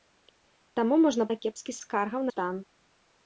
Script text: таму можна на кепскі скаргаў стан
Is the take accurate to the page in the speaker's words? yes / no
yes